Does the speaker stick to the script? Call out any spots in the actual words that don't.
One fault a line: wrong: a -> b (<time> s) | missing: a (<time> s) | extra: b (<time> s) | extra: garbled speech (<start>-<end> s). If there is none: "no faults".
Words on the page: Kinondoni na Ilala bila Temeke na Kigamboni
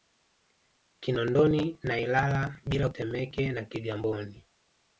no faults